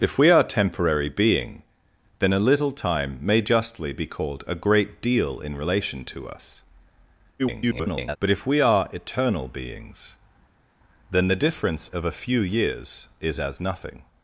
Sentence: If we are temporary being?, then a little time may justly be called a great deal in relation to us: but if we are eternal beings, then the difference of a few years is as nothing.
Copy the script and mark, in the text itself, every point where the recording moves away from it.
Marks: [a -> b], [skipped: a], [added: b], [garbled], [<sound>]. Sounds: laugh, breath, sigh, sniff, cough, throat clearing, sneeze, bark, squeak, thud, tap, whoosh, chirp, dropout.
If we are temporary being?, then a little time may justly be called a great deal in relation to us: [garbled] but if we are eternal beings, then the difference of a few years is as nothing.